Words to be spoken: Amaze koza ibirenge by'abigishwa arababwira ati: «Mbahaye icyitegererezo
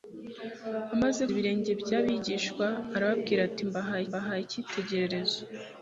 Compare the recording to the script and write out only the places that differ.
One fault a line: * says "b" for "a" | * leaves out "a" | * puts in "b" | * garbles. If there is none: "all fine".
* leaves out "koza"
* puts in "mbahaye"